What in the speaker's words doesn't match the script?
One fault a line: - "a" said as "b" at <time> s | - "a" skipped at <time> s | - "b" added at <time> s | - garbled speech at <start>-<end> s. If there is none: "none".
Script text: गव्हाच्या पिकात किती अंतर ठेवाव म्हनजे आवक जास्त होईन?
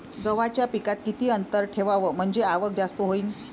none